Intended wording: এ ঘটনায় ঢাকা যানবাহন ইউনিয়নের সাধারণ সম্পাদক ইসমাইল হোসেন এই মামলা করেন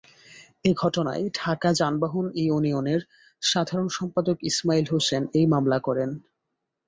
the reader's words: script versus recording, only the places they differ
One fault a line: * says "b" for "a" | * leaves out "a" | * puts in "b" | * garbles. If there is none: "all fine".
all fine